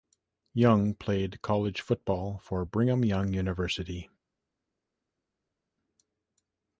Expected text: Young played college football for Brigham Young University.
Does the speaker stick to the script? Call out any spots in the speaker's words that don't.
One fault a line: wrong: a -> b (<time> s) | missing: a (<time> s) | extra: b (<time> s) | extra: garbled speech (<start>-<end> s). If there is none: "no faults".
no faults